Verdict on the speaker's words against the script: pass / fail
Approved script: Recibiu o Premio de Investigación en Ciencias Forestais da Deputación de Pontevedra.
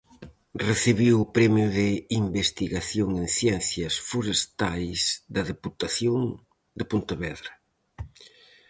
pass